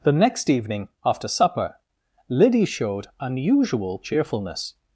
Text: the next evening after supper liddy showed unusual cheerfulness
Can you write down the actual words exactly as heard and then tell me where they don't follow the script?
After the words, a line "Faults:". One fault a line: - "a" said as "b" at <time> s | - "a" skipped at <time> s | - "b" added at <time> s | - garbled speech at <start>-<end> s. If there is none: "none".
the next evening after supper liddy showed unusual cheerfulness
Faults:
none